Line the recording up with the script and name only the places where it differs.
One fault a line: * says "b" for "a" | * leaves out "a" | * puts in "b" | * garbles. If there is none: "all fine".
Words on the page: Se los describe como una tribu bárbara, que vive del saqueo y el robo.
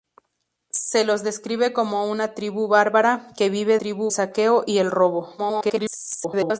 * says "tribu" for "del"
* garbles